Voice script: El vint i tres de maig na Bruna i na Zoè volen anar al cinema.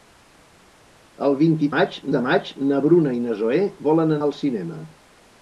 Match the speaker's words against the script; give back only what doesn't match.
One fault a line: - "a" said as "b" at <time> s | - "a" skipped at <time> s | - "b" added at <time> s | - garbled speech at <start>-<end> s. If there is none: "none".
- "tres" said as "maig" at 1.7 s
- "anar" skipped at 4.2 s